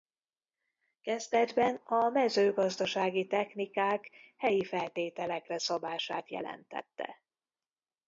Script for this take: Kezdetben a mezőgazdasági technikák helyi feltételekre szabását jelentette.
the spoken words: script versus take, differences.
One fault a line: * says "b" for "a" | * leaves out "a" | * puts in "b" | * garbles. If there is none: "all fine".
all fine